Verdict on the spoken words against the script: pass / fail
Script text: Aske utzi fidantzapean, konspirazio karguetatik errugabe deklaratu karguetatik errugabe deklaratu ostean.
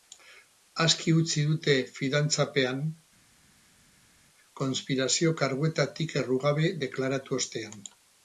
fail